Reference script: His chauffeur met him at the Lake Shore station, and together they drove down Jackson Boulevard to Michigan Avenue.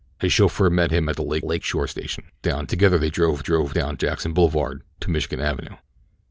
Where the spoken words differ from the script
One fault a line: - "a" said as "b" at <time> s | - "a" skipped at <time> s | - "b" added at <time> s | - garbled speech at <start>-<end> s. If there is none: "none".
- "Lake" added at 1.4 s
- "and" said as "down" at 2.4 s
- "drove" added at 3.4 s